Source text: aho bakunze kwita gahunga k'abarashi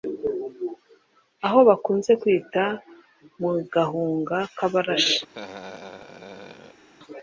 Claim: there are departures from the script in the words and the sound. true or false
true